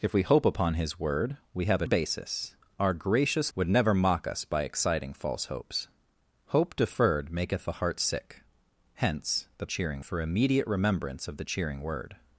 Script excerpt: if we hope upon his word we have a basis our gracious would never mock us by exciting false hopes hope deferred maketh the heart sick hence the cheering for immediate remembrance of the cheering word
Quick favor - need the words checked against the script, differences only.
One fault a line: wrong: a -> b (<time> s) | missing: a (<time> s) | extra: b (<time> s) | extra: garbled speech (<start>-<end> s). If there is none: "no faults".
no faults